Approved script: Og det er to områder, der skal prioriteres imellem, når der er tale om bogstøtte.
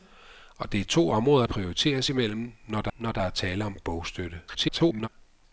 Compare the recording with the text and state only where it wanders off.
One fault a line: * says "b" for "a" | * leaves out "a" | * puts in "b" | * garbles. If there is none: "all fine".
* says "prioriteres imellem når der" for "der skal prioriteres imellem"
* garbles